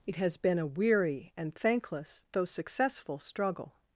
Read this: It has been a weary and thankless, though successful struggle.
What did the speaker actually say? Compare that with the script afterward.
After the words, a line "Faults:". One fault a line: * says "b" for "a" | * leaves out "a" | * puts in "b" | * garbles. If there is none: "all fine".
It has been a weary and thankless, though successful struggle.
Faults:
all fine